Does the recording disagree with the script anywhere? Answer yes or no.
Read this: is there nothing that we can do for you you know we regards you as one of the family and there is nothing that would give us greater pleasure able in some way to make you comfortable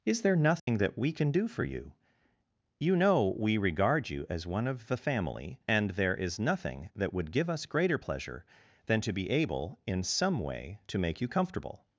yes